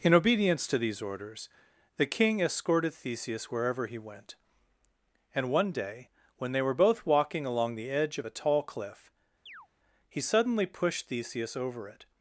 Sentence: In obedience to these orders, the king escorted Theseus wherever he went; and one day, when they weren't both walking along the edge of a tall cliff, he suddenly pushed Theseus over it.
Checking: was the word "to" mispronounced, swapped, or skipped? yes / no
no